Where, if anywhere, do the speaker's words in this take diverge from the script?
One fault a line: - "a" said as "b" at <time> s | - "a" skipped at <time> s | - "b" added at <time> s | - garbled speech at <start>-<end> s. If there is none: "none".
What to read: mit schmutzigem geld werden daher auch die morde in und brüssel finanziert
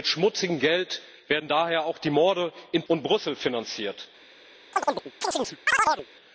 none